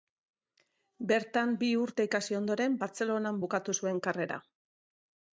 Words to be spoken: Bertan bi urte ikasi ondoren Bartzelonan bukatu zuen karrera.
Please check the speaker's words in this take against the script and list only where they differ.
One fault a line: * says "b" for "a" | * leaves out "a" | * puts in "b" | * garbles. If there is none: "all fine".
all fine